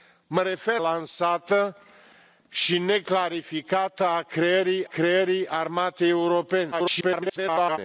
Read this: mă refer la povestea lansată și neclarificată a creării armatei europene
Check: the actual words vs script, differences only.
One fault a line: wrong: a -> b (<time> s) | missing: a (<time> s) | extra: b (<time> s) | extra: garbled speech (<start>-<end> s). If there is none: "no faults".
missing: la povestea (0.8 s)
extra: creării (4.8 s)
extra: garbled speech (6.7-7.8 s)